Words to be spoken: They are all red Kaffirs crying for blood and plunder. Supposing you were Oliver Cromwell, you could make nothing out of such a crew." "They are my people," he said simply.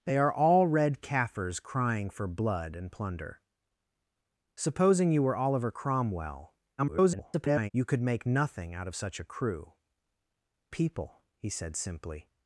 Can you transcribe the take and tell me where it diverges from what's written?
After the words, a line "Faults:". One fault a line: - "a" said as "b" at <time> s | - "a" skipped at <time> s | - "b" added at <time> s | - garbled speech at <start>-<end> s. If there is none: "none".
They are all red Kaffirs crying for blood and plunder. Supposing you were Oliver Cromwell, [garbled] you could make nothing out of such a crew." "People," he said simply.
Faults:
- garbled speech at 6.8-7.7 s
- "They are my" skipped at 9.7 s